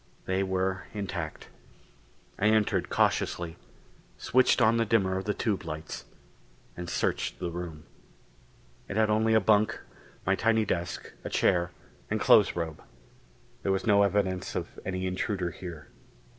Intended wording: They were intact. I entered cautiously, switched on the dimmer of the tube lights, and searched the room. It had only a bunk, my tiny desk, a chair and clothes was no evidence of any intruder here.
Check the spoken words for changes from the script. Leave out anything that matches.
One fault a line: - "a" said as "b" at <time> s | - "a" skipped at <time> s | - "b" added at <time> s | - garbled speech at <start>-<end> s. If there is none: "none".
- "robe There" added at 12.6 s